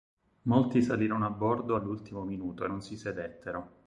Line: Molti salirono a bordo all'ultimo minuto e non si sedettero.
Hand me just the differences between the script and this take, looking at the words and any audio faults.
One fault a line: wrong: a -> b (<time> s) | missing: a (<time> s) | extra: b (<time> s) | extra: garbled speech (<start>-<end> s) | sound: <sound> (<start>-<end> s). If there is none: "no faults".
no faults